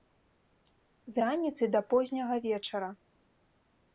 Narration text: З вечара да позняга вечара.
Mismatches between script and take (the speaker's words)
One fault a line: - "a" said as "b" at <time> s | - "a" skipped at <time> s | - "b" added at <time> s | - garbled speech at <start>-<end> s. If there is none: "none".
- "вечара" said as "раніцы" at 1.2 s